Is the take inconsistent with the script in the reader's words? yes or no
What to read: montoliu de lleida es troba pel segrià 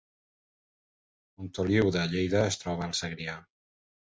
yes